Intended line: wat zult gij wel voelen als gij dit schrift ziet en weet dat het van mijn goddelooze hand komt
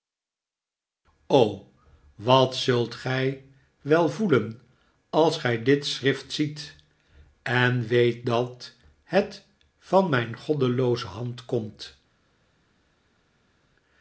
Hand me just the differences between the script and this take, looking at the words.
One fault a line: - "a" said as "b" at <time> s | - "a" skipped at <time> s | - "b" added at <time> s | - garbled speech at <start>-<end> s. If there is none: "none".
none